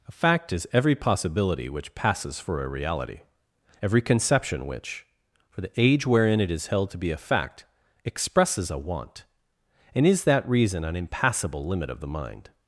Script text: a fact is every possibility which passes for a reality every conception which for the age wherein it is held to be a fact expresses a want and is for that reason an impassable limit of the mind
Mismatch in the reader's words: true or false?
true